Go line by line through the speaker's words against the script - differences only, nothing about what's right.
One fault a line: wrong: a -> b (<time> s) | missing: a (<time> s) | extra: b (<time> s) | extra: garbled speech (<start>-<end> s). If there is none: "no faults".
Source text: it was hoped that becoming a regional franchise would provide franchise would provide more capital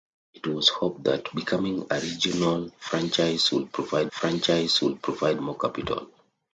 no faults